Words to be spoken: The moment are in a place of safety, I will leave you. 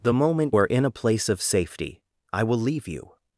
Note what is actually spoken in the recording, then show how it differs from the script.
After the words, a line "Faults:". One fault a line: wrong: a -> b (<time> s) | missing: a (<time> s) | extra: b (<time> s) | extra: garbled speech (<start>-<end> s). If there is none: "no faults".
The moment are in a place of safety, I will leave you.
Faults:
no faults